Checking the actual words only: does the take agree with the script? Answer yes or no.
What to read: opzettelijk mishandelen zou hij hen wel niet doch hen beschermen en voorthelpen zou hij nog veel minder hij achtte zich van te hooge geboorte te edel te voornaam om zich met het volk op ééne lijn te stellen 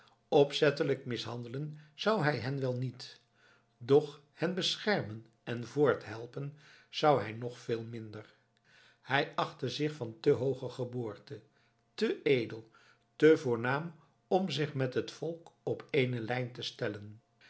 yes